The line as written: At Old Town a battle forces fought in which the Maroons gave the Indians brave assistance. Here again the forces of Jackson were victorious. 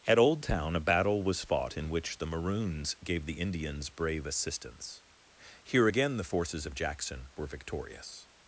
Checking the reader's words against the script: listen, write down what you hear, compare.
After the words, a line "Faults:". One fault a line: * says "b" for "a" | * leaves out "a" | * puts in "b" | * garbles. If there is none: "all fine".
At Old Town a battle was fought in which the Maroons gave the Indians brave assistance. Here again the forces of Jackson were victorious.
Faults:
* says "was" for "forces"